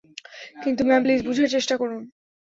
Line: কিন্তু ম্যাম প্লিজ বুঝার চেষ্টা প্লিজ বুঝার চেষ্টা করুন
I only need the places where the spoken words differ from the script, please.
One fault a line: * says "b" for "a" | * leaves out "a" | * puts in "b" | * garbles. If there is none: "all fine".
* leaves out "প্লিজ বুঝার চেষ্টা"